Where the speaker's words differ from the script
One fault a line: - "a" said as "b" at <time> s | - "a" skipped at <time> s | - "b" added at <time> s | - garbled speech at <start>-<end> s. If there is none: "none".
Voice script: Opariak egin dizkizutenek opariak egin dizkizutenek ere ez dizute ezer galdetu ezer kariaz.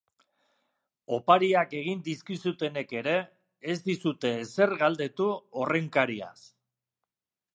- "opariak egin dizkizutenek" skipped at 3.0 s
- "ezer" said as "horren" at 5.6 s